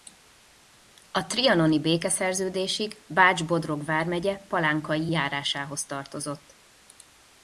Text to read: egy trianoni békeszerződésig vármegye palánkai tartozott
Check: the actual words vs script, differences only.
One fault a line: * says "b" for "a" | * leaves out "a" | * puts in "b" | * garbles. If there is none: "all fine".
* says "a" for "egy"
* puts in "bács bodrog"
* puts in "járásához"